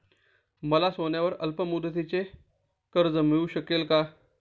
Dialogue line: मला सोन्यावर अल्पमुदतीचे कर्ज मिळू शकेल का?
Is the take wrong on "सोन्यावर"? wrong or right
right